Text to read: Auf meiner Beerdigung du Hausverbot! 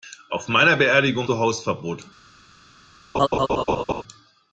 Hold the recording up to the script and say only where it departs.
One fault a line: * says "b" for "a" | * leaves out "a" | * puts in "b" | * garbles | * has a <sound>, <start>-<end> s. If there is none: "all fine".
* has a laugh, 3.1-4.0 s